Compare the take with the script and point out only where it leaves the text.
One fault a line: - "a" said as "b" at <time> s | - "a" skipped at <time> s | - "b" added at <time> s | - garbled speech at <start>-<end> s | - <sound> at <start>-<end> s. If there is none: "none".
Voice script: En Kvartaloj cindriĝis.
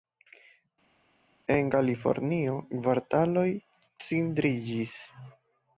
- "Kalifornio" added at 1.7 s